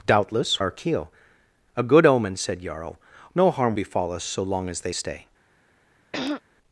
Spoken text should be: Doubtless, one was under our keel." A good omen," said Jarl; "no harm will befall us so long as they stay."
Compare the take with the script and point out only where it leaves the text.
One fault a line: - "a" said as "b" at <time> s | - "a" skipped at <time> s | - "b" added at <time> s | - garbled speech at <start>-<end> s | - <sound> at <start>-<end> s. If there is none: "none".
- "one was under" skipped at 0.6 s
- "will" skipped at 3.8 s
- throat clearing at 6.1-6.4 s